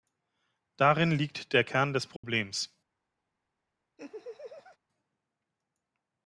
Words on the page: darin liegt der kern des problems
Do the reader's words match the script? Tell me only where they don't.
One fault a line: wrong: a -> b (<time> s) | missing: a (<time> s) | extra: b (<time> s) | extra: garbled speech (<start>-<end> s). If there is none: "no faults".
no faults